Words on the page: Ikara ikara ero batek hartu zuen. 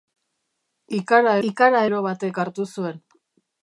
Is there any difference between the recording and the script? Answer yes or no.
no